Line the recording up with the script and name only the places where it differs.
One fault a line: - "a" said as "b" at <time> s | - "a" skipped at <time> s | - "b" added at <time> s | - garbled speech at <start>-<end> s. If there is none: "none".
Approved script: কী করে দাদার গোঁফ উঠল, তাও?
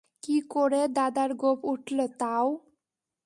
none